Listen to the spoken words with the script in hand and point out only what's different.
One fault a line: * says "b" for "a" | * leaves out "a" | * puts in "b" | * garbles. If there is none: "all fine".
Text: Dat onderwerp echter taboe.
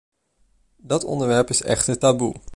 * puts in "is"